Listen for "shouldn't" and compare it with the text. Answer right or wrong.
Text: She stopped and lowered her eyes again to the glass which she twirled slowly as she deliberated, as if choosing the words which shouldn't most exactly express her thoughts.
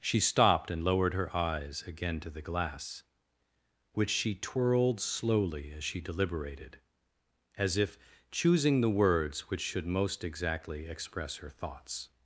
wrong